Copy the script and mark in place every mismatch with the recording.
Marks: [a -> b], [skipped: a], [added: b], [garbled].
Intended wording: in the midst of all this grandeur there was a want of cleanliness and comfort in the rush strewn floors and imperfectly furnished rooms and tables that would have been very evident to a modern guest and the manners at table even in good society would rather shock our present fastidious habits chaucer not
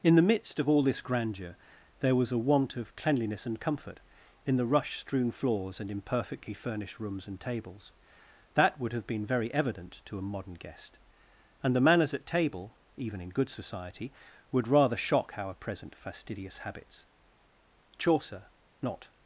in the midst of all this grandeur there was a want of cleanliness and comfort in the rush strewn floors and imperfectly furnished rooms and tables that would have been very evident to a modern guest and the manners at table even in good society would rather shock our present fastidious habits chaucer not